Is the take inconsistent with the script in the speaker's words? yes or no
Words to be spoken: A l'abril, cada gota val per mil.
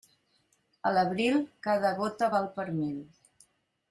no